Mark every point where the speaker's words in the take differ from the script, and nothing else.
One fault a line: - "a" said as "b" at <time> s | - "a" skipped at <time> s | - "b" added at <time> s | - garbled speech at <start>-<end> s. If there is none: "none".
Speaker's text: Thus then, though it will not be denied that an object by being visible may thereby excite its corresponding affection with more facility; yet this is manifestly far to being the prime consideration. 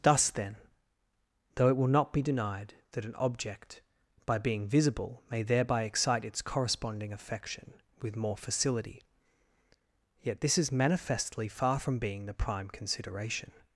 - "to" said as "from" at 11.8 s